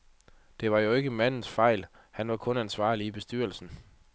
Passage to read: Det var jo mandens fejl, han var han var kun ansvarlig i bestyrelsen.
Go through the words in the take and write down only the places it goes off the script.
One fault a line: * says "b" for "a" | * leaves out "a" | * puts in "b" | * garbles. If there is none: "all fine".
* puts in "ikke"
* leaves out "han var"